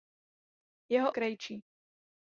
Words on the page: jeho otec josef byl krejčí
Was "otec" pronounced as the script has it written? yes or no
no